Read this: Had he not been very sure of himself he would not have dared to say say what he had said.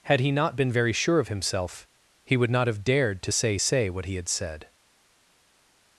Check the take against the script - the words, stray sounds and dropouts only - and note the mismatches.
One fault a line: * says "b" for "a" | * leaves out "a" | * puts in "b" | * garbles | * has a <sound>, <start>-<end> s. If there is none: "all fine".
all fine